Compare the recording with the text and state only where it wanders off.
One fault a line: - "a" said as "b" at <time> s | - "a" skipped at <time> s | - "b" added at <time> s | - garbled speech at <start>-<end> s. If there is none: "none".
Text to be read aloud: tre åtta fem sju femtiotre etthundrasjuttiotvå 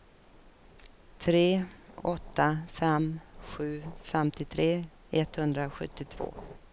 none